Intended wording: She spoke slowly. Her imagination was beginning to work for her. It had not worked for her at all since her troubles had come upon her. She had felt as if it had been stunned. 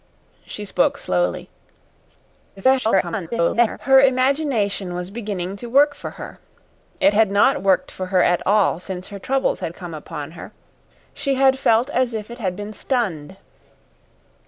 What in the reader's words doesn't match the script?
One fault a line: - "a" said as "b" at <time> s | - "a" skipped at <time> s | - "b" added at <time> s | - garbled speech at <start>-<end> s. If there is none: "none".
- garbled speech at 2.6-3.8 s